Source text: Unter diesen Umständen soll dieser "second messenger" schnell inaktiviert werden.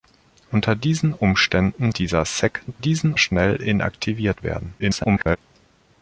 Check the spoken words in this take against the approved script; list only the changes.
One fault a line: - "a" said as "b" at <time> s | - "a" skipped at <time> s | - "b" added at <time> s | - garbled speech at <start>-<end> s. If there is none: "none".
- "soll" skipped at 1.9 s
- "messenger" said as "diesen" at 2.8 s
- garbled speech at 4.8-5.4 s